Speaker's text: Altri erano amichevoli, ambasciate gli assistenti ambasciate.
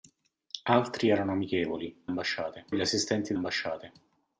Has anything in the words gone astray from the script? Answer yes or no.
no